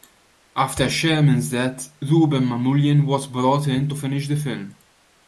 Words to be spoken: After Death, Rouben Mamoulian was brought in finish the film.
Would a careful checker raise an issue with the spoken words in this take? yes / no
yes